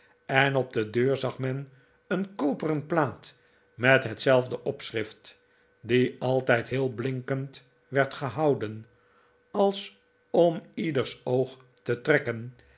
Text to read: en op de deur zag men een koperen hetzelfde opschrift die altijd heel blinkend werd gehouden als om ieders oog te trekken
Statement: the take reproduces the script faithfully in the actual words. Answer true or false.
false